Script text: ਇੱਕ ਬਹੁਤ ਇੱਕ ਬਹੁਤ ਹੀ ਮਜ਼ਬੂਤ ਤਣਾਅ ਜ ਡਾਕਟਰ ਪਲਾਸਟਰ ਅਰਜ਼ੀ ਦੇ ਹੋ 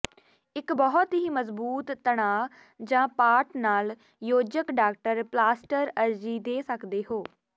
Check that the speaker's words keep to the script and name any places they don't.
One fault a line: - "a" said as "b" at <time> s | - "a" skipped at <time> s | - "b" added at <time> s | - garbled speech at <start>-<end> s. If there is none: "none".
- "ਇੱਕ ਬਹੁਤ" skipped at 1.1 s
- "ਪਾਟ ਨਾਲ ਯੋਜਕ" added at 3.2 s
- "ਸਕਦੇ" added at 6.6 s